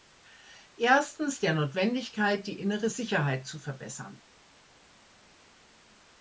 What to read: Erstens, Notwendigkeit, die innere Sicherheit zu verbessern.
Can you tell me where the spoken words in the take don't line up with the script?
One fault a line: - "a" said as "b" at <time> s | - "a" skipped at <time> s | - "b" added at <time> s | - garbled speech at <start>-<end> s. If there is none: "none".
- "der" added at 1.4 s